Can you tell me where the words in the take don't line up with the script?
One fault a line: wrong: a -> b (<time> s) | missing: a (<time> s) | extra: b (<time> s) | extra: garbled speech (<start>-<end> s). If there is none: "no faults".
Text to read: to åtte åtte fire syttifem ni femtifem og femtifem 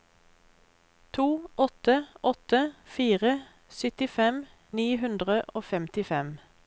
wrong: femtifem -> hundre (5.1 s)